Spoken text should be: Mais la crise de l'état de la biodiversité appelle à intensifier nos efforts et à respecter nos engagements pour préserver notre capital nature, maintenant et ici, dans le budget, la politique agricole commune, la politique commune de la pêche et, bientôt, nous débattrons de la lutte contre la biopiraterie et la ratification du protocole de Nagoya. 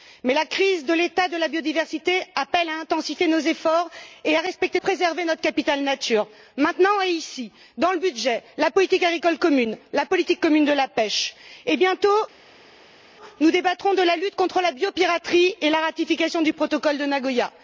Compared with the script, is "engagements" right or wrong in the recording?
wrong